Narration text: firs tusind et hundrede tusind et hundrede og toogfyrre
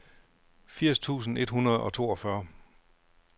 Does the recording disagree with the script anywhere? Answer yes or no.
yes